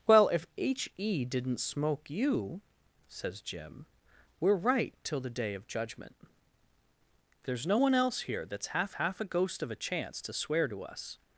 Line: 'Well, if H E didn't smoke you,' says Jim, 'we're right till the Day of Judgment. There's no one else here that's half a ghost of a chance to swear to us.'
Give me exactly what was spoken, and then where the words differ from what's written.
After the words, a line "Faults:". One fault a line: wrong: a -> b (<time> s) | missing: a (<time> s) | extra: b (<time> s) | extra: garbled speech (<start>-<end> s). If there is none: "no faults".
'Well, if H E didn't smoke you,' says Jim, 'we're right till the Day of Judgment. There's no one else here that's half half a ghost of a chance to swear to us.'
Faults:
extra: half (8.9 s)